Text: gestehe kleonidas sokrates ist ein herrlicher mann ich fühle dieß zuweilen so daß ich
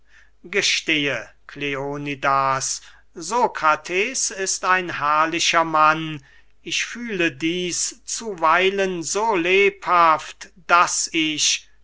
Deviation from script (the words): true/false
true